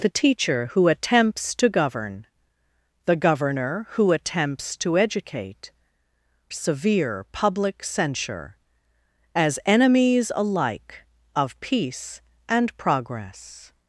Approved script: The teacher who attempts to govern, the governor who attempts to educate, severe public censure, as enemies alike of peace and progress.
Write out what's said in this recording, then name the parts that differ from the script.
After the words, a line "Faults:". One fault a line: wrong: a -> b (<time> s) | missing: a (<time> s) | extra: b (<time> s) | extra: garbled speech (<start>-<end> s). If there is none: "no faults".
The teacher who attempts to govern, the governor who attempts to educate, severe public censure, as enemies alike of peace and progress.
Faults:
no faults